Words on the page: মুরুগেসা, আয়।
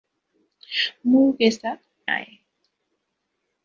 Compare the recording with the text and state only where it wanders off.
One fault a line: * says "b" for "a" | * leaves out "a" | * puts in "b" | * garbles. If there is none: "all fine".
all fine